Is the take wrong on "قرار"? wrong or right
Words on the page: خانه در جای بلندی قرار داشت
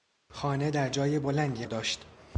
wrong